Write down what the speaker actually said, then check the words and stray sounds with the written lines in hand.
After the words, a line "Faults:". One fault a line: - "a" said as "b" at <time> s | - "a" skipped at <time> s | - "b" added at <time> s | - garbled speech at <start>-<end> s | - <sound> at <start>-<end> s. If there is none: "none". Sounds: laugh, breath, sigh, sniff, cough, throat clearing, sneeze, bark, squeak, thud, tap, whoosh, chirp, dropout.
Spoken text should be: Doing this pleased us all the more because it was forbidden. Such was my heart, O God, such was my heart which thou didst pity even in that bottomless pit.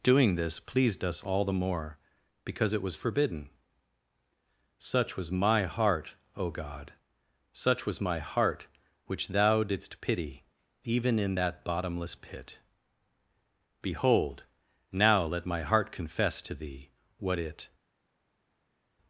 Doing this pleased us all the more because it was forbidden. Such was my heart, O God, such was my heart which thou didst pity even in that bottomless pit. Behold, now let my heart confess to thee what it
Faults:
- "Behold now let my heart confess to thee what it" added at 13.8 s